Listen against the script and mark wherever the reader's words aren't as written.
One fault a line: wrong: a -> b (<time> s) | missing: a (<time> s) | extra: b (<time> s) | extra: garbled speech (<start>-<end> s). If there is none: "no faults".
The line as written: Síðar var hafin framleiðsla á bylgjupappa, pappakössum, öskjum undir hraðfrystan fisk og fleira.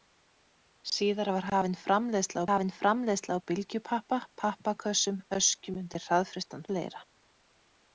extra: hafin framleiðsla (2.5 s)
missing: fisk og (6.6 s)